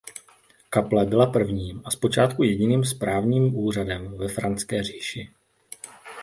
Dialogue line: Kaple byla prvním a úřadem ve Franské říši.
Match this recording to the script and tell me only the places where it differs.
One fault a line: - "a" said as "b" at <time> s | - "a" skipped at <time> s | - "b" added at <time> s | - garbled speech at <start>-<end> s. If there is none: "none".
- "zpočátku jediným správním" added at 1.9 s